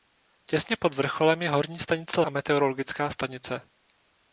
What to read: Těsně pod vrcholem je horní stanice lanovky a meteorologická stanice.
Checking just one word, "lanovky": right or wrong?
wrong